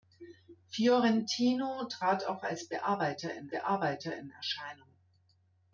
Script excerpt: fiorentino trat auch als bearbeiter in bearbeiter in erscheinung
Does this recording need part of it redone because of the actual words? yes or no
no